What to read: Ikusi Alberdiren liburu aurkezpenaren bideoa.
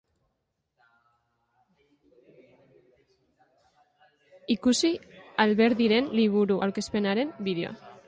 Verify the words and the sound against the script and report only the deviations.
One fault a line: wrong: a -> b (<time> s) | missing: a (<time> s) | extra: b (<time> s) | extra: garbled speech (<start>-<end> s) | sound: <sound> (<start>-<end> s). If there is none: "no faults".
no faults